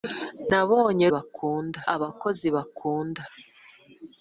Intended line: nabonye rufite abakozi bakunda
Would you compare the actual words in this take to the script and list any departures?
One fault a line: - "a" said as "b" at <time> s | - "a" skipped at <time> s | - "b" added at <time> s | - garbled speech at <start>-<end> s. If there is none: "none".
- "rufite" said as "bakunda" at 1.1 s